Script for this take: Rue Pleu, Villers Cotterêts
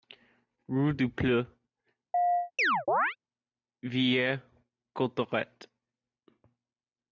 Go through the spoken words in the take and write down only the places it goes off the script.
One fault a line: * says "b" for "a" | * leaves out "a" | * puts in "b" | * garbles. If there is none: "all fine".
* puts in "du"